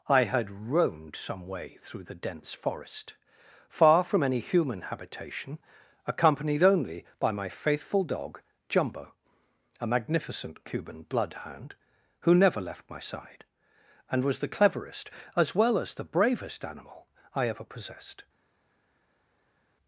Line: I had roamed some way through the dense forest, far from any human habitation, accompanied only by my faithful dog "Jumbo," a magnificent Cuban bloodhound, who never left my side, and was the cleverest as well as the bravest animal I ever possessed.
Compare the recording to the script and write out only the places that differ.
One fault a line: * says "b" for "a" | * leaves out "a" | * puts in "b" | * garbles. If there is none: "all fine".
all fine